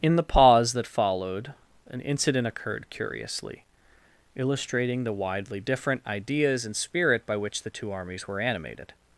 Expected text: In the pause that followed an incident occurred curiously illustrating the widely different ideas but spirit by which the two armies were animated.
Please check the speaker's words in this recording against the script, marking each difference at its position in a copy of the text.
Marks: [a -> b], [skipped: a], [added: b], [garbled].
In the pause that followed an incident occurred curiously illustrating the widely different ideas [but -> and] spirit by which the two armies were animated.